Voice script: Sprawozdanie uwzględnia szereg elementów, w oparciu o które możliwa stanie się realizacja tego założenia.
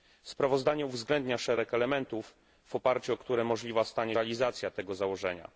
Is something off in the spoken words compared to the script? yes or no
yes